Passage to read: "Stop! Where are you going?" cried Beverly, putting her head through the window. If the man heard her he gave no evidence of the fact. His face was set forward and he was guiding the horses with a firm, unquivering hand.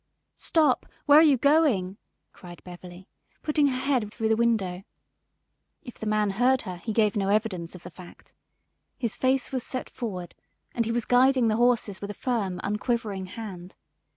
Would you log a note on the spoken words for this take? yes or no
no